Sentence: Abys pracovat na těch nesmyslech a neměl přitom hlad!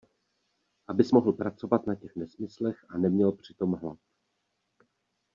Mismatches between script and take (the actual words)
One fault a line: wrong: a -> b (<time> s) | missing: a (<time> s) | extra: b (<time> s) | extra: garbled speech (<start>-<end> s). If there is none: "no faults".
extra: mohl (1.1 s)